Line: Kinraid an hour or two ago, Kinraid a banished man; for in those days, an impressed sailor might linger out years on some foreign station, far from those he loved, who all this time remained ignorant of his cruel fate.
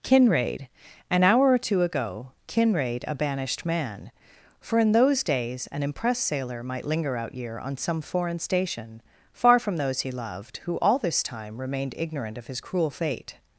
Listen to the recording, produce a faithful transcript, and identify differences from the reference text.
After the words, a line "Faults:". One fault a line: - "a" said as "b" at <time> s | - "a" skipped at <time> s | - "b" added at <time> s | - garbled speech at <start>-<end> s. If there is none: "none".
Kinraid an hour or two ago, Kinraid a banished man; for in those days, an impressed sailor might linger out year on some foreign station, far from those he loved, who all this time remained ignorant of his cruel fate.
Faults:
- "years" said as "year" at 7.3 s